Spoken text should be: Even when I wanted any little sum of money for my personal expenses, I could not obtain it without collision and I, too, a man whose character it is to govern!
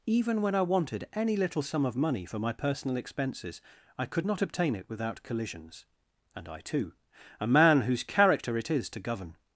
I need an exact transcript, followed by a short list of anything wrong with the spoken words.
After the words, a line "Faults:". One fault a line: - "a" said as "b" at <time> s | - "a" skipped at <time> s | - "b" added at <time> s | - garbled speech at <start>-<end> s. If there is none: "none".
Even when I wanted any little sum of money for my personal expenses, I could not obtain it without collisions and I, too, a man whose character it is to govern!
Faults:
- "collision" said as "collisions" at 5.2 s